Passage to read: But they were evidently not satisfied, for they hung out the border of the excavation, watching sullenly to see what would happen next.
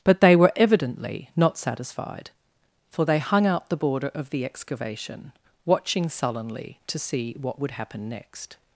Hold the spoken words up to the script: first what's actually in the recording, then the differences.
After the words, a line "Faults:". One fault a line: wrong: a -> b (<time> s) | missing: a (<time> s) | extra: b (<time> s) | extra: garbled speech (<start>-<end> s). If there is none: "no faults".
But they were evidently not satisfied, for they hung out the border of the excavation, watching sullenly to see what would happen next.
Faults:
no faults